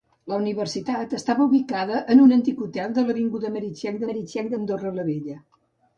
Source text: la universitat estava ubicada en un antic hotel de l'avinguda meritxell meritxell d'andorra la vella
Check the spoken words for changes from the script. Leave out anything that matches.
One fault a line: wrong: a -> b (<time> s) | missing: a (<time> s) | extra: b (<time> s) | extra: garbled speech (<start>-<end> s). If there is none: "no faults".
no faults